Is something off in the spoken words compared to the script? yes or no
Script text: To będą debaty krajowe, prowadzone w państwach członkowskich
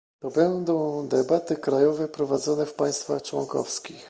no